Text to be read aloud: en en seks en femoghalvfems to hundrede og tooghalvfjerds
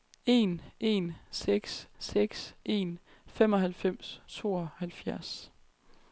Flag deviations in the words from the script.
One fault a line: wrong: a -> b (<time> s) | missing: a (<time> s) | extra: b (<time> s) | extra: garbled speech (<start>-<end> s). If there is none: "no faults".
extra: seks (2.0 s)
missing: to hundrede og (4.2 s)